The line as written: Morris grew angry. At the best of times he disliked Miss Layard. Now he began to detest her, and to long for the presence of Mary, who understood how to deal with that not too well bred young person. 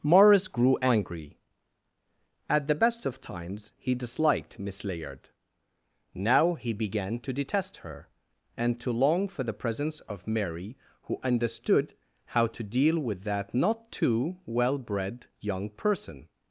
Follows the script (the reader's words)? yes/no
yes